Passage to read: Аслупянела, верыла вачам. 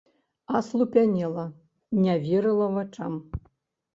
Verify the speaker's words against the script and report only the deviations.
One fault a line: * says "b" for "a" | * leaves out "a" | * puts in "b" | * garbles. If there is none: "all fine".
* puts in "не"